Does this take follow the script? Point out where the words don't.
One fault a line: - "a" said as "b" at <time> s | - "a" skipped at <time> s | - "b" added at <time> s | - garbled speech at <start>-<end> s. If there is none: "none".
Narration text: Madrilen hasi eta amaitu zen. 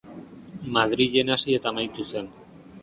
none